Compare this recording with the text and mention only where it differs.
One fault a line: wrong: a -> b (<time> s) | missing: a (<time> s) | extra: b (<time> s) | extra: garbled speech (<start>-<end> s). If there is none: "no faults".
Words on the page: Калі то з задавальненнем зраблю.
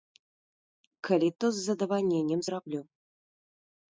no faults